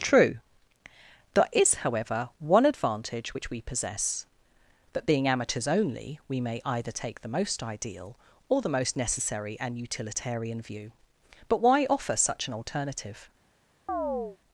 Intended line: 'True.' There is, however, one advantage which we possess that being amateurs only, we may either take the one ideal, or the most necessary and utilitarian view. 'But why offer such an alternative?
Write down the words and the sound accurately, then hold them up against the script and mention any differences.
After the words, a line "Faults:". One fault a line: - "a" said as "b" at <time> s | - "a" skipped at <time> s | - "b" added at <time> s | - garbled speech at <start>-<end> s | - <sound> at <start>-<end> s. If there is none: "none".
'True.' There is, however, one advantage which we possess that being amateurs only, we may either take the most ideal, or the most necessary and utilitarian view. 'But why offer such an alternative?
Faults:
- "one" said as "most" at 7.3 s
- chirp at 13.9-14.4 s